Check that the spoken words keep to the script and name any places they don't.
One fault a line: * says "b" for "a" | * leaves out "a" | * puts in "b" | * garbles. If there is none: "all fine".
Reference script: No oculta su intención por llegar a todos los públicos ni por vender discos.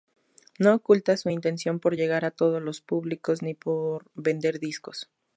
all fine